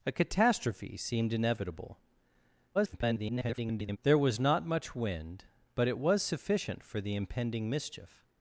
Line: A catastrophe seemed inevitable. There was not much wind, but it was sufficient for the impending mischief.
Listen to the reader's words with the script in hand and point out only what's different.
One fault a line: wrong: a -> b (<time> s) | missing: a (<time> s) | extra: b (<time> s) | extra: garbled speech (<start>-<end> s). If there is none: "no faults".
extra: garbled speech (2.7-4.0 s)